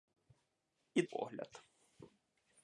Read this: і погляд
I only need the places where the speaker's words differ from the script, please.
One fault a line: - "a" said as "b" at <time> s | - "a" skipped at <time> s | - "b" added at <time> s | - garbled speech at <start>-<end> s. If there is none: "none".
none